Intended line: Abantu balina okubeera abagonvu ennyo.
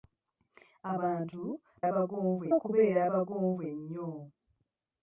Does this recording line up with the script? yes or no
no